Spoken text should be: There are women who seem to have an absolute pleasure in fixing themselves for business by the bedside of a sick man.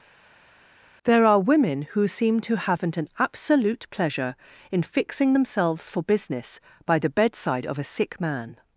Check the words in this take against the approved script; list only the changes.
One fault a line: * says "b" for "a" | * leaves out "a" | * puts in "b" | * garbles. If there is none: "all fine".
* says "haven't" for "have"